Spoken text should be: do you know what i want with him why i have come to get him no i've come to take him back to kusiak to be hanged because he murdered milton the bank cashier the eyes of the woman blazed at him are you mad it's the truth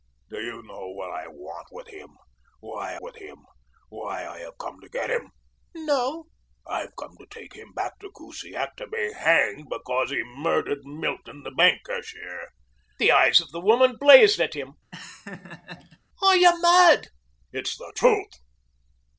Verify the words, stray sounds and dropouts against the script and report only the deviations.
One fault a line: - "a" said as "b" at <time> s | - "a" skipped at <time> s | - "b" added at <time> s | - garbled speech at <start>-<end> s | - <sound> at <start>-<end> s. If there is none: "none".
- "with him why" added at 3.0 s
- laugh at 14.9-16.0 s